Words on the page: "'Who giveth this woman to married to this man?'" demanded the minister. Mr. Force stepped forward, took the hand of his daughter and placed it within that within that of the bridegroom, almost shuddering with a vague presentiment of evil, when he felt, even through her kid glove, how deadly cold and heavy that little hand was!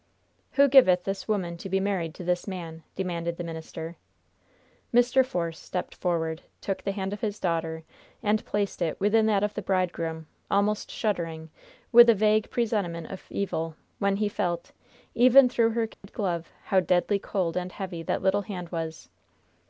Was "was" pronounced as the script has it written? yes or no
yes